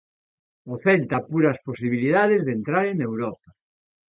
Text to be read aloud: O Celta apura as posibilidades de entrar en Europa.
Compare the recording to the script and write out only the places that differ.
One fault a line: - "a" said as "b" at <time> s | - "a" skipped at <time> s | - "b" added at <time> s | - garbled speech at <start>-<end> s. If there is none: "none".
none